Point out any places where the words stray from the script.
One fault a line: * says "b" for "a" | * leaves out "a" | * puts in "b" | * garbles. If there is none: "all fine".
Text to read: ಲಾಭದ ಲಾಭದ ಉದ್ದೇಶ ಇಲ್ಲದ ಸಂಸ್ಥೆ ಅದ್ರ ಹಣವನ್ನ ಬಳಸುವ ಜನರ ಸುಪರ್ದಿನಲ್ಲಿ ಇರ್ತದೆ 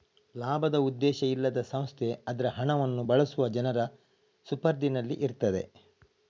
* leaves out "ಲಾಭದ"